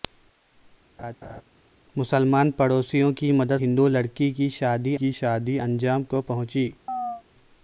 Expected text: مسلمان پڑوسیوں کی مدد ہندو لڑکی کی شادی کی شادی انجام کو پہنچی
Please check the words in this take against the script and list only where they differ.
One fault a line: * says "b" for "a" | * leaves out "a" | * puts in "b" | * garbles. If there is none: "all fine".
all fine